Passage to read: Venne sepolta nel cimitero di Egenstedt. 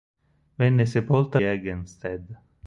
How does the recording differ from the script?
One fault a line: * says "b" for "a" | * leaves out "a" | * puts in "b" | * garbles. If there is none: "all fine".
* leaves out "nel cimitero di"